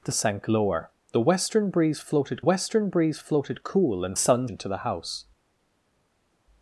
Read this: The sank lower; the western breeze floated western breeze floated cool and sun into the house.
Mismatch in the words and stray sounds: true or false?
false